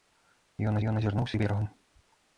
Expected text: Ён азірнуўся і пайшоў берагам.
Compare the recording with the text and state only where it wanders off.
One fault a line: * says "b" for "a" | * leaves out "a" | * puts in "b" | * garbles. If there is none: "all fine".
* puts in "ён"
* leaves out "пайшоў"